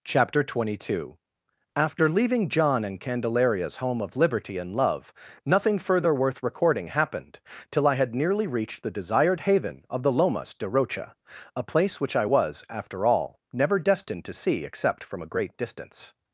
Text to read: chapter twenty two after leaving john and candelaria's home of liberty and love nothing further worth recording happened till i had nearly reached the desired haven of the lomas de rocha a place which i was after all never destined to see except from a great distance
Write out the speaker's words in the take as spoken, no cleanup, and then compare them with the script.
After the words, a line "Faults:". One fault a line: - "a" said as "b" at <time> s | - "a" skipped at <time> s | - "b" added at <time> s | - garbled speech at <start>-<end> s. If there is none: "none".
chapter twenty two after leaving john and candelaria's home of liberty and love nothing further worth recording happened till i had nearly reached the desired haven of the lomas de rocha a place which i was after all never destined to see except from a great distance
Faults:
none